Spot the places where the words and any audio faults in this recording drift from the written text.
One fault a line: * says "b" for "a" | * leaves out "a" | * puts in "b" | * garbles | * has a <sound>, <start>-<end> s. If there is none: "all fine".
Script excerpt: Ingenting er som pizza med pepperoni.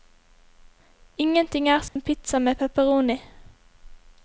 * has a dropout, 1.9-2.0 s